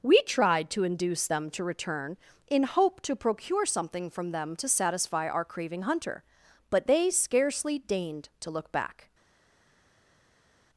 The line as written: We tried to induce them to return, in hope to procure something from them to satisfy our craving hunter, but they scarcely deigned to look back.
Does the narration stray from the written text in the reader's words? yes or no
no